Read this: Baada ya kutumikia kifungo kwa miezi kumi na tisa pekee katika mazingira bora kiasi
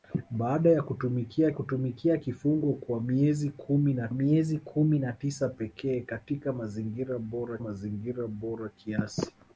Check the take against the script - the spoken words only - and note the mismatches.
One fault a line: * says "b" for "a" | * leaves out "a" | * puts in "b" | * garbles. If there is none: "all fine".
* puts in "kutumikia"
* puts in "miezi kumi na"
* puts in "mazingira bora"